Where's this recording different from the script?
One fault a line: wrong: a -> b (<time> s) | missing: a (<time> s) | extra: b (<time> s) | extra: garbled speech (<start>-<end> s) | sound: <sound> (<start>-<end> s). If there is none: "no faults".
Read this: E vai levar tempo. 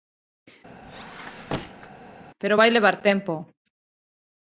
sound: squeak (0.8-1.9 s)
wrong: E -> Pero (2.4 s)